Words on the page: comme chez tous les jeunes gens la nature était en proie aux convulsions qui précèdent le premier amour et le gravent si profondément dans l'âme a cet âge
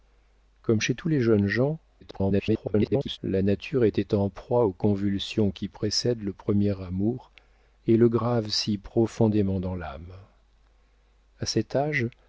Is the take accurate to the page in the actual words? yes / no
no